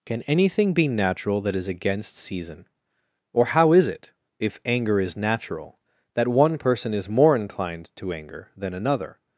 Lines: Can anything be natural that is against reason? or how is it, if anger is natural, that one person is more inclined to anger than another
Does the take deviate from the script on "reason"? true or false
true